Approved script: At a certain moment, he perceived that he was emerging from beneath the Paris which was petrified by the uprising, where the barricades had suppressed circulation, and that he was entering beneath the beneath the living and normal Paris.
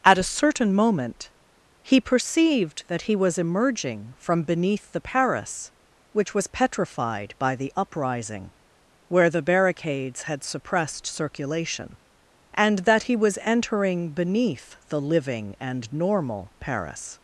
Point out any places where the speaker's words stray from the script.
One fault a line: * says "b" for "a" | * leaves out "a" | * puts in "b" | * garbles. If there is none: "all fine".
* leaves out "beneath the"